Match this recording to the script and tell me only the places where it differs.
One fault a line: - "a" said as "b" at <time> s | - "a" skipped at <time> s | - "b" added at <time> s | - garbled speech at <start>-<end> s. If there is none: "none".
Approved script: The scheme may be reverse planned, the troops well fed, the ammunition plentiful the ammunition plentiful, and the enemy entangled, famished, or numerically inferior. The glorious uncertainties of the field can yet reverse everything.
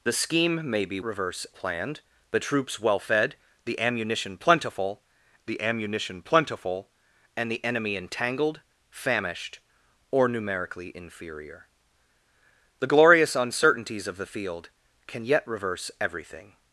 none